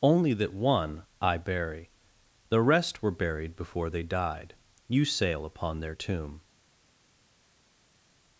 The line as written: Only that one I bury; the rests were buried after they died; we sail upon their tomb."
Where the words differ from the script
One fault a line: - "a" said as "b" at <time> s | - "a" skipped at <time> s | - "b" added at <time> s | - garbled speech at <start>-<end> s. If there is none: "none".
- "rests" said as "rest" at 2.6 s
- "after" said as "before" at 3.6 s
- "we" said as "you" at 4.9 s